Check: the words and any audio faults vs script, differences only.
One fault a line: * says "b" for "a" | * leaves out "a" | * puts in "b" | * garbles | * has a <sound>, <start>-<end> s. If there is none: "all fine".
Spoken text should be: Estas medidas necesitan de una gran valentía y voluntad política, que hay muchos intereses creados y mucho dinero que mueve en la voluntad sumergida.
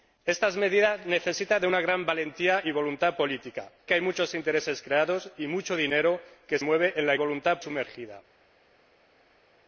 all fine